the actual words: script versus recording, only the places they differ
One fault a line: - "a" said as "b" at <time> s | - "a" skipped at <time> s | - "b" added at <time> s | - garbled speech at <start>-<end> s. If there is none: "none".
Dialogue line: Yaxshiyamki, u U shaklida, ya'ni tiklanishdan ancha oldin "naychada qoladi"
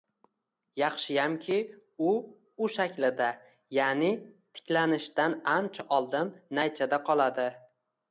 none